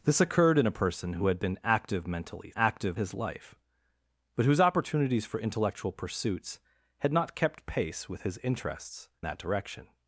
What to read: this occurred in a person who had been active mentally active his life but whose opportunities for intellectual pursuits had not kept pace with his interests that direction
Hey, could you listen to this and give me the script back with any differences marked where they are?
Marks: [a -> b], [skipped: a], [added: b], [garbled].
this occurred in a person who had been active mentally active his life but whose opportunities for intellectual pursuits had not kept pace with his interests that direction